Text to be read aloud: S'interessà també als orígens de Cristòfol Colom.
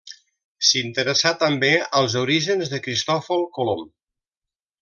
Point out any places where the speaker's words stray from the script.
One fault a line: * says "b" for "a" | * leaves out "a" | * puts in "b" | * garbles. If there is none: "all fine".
all fine